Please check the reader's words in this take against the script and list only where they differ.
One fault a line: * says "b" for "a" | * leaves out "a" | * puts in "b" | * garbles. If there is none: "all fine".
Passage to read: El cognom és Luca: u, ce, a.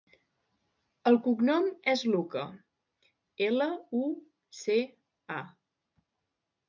* puts in "ela"